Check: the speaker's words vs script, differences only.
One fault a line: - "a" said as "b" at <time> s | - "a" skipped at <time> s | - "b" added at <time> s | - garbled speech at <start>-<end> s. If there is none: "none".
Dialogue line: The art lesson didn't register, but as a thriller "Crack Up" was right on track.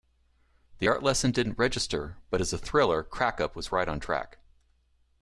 none